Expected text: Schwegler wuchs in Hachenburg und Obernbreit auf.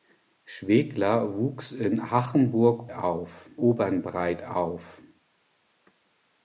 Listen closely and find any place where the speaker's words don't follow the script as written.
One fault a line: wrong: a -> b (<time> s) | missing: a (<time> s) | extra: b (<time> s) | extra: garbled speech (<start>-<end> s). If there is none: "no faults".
wrong: und -> auf (2.9 s)